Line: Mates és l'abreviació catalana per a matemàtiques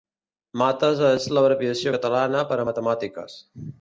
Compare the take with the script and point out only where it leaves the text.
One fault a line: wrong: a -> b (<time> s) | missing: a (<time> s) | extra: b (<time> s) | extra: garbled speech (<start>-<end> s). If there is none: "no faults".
no faults